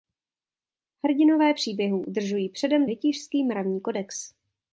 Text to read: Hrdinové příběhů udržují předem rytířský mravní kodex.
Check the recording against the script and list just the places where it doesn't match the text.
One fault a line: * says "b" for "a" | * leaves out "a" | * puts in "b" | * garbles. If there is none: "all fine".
all fine